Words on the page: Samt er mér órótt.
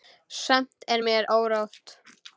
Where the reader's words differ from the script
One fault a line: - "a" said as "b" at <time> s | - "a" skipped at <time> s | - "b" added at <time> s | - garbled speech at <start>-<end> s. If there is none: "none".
none